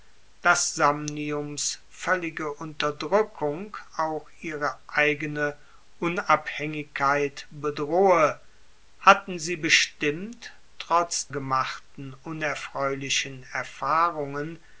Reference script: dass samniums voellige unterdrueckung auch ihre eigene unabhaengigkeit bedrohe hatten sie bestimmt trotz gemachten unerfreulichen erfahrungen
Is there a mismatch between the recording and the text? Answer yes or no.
no